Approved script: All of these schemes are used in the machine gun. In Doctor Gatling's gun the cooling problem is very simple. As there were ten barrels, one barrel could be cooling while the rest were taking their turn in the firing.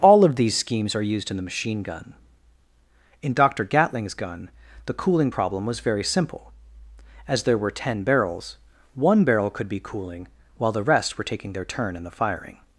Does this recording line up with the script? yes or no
no